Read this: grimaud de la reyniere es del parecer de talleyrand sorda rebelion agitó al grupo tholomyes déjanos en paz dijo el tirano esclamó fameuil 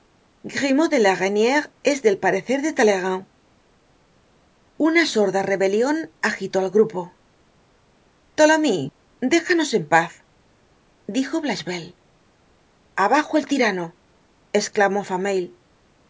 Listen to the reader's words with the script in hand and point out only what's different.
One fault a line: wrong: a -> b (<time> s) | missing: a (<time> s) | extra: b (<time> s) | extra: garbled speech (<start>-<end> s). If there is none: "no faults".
extra: una (4.9 s)
extra: blachevelle abajo (11.4 s)